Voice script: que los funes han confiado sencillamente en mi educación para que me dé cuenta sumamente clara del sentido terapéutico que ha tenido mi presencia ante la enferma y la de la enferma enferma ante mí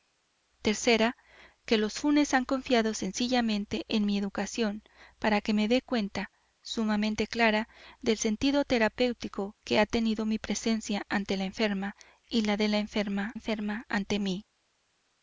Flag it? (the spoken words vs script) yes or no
no